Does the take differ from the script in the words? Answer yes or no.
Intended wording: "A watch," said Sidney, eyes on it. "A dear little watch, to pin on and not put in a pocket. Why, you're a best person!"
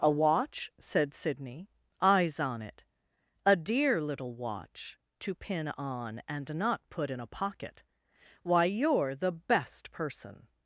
yes